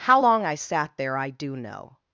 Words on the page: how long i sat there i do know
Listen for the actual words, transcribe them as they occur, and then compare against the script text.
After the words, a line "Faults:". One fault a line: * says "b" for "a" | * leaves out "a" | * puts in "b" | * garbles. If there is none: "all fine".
how long i sat there i do know
Faults:
all fine